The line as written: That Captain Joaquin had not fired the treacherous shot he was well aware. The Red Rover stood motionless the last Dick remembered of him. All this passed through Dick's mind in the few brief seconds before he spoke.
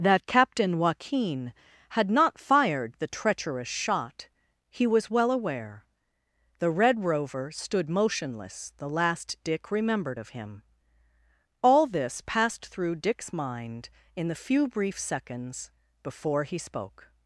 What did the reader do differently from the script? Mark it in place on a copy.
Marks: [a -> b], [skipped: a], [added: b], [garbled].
That Captain Joaquin had not fired the treacherous shot he was well aware. The Red Rover stood motionless the last Dick remembered of him. All this passed through Dick's mind in the few brief seconds before he spoke.